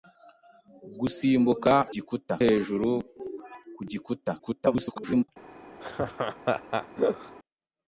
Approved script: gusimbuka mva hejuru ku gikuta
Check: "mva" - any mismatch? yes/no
yes